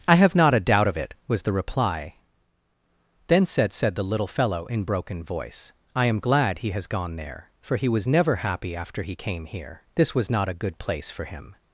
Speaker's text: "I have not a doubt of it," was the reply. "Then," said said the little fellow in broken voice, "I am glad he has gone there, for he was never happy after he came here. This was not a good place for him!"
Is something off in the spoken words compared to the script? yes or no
no